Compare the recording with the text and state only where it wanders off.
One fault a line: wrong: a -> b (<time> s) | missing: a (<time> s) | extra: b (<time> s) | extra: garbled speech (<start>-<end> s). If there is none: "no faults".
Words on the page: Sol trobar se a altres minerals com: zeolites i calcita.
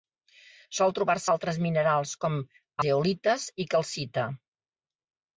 no faults